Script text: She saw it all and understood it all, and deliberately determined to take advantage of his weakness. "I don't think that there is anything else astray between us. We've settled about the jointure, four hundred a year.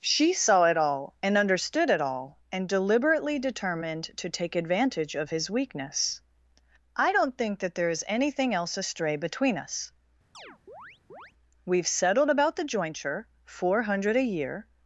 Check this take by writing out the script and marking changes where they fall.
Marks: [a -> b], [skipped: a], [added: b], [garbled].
She saw it all and understood it all, and deliberately determined to take advantage of his weakness. "I don't think that there is anything else astray between us. We've settled about the jointure, four hundred a year.